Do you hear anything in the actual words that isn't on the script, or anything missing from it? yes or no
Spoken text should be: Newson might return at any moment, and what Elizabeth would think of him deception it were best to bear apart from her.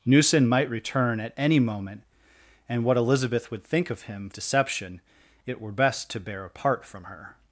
no